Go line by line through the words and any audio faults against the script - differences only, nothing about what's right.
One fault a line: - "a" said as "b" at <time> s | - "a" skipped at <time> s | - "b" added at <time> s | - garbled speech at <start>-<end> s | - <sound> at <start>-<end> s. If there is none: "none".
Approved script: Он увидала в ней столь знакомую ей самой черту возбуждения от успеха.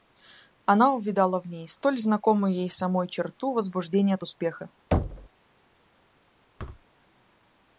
- "Он" said as "Она" at 0.7 s
- thud at 4.9-5.3 s
- thud at 6.6-6.9 s